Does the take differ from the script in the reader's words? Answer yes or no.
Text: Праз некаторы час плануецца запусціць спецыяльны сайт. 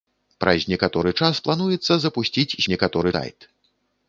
yes